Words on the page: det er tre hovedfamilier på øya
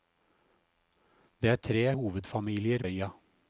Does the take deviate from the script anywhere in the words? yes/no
yes